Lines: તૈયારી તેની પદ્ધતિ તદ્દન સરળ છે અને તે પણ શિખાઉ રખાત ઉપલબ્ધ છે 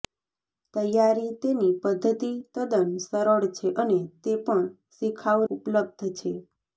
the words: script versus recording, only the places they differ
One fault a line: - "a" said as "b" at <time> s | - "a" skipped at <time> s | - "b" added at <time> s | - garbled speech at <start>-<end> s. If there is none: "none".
- "રખાત" skipped at 5.4 s